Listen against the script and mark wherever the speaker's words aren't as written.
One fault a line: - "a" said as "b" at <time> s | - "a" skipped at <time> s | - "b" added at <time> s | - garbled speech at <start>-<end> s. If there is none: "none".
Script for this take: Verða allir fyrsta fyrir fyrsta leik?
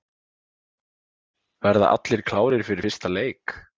- "fyrsta" said as "klárir" at 2.3 s